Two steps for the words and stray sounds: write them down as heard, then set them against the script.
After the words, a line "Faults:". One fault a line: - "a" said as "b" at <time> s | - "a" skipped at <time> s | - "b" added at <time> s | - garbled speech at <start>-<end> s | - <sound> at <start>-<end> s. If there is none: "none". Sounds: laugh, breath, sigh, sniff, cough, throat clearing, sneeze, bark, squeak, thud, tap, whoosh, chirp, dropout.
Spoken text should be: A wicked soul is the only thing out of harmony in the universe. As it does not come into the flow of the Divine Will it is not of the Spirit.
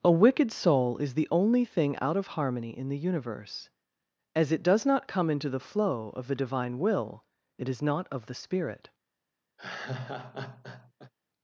A wicked soul is the only thing out of harmony in the universe. As it does not come into the flow of the Divine Will it is not of the Spirit.
Faults:
- laugh at 9.6-11.1 s